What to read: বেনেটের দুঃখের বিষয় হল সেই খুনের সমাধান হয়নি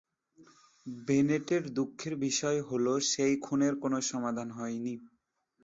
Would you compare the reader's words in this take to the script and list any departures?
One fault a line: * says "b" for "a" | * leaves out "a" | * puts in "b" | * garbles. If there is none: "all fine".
* puts in "কোনো"